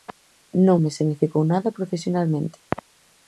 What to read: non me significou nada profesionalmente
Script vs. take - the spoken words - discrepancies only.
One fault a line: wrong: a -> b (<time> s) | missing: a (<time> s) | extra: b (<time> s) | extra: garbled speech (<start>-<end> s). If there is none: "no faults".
no faults